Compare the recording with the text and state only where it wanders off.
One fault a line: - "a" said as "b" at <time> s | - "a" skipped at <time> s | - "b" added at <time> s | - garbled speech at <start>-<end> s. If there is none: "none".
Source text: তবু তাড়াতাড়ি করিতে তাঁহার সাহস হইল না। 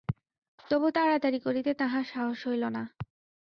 none